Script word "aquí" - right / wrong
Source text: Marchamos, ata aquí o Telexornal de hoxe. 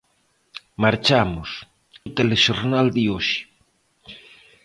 wrong